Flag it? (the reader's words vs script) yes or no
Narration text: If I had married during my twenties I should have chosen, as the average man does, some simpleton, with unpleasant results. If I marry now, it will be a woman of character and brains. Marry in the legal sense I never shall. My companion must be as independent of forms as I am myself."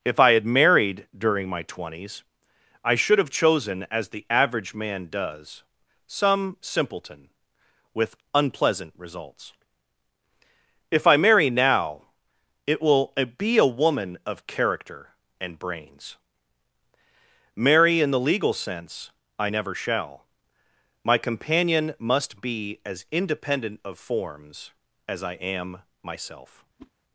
no